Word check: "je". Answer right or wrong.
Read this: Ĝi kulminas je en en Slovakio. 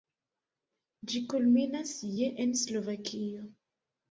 right